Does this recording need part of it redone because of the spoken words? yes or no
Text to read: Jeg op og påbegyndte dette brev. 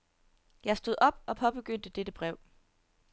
yes